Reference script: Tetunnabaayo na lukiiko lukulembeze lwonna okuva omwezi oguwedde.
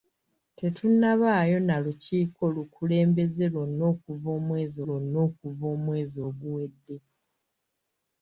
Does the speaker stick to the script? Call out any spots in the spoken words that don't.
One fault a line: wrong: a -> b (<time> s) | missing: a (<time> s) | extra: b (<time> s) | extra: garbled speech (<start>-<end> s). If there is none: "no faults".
extra: lwonna okuva omwezi (4.9 s)